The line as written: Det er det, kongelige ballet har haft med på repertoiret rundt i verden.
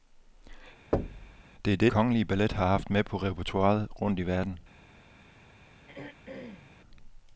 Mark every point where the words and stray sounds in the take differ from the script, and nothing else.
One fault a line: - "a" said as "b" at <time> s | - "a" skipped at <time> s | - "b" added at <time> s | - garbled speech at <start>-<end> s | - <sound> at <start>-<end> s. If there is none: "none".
- thud at 0.9-1.4 s
- throat clearing at 5.9-6.7 s